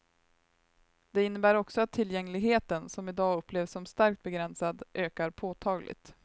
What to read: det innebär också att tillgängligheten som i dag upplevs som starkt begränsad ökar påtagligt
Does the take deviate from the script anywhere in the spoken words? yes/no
no